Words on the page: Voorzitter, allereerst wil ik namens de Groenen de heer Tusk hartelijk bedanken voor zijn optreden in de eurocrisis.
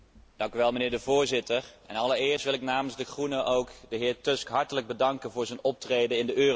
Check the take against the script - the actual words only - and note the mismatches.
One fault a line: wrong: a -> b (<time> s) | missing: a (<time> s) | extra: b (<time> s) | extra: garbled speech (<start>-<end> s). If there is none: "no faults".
no faults